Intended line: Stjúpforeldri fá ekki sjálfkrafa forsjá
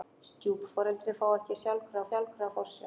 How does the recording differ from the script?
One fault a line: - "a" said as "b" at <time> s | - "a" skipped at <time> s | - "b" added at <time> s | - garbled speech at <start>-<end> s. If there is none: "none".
- "sjálfkrafa" added at 2.1 s